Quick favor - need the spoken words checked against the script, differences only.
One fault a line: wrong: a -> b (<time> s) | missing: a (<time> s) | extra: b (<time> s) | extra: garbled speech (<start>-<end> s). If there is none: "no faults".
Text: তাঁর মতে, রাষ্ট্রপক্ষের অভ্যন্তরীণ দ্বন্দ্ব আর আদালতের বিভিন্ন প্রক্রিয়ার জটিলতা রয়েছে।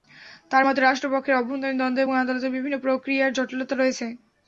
wrong: আর -> এবং (2.0 s)